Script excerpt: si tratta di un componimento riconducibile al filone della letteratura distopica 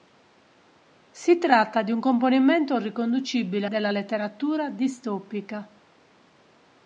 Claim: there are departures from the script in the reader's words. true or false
true